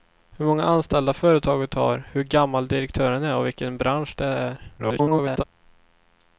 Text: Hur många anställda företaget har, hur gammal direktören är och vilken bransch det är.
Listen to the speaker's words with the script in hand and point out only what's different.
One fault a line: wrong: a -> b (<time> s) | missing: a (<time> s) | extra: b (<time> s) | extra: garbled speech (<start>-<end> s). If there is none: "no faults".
extra: garbled speech (4.8-5.4 s)